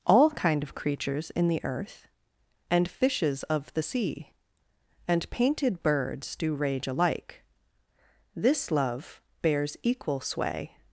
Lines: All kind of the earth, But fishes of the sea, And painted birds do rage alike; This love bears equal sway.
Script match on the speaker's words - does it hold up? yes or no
no